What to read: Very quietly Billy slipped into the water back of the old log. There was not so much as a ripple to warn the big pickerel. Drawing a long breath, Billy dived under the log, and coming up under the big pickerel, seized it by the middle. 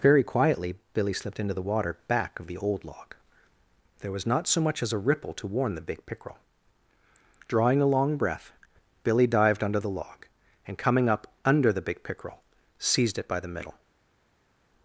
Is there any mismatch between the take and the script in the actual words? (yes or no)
no